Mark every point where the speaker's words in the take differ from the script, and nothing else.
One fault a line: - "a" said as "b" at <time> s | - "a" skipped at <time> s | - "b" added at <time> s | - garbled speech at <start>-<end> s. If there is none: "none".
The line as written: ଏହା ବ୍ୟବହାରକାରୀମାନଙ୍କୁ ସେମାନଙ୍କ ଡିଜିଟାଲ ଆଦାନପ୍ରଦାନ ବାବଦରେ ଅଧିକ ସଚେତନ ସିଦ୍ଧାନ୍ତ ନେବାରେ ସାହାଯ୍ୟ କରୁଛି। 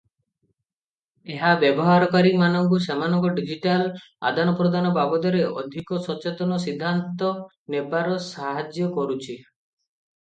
none